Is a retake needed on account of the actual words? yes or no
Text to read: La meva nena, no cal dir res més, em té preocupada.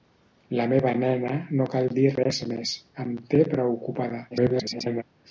yes